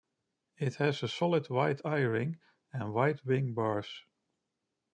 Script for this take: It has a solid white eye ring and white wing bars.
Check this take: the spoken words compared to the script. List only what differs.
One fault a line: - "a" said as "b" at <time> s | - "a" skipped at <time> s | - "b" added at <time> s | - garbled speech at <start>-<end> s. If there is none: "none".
none